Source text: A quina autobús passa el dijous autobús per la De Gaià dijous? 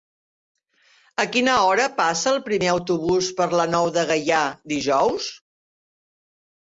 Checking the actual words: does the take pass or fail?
fail